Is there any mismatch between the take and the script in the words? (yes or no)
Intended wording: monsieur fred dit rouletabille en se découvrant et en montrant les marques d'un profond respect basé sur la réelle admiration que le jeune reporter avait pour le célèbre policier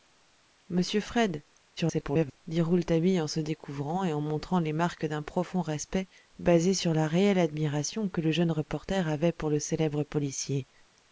yes